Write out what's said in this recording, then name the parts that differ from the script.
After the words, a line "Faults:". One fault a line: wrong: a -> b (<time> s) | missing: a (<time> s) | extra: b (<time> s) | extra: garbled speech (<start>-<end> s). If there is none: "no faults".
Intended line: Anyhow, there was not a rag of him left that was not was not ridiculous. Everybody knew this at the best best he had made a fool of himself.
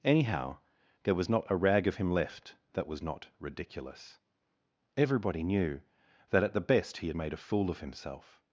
Anyhow, there was not a rag of him left that was not ridiculous. Everybody knew that at the best he had made a fool of himself.
Faults:
missing: was not (3.3 s)
wrong: this -> that (6.3 s)
missing: best (7.0 s)